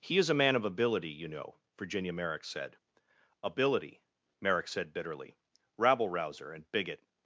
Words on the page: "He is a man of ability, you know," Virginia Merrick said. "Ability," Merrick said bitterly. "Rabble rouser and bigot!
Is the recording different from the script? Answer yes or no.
no